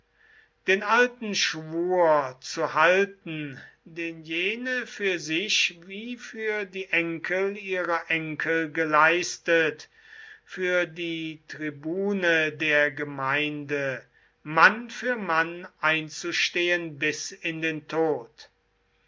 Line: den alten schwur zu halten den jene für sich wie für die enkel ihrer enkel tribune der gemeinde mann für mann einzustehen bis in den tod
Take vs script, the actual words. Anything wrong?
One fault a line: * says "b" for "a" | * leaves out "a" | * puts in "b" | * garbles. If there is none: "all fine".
* puts in "geleistet für die"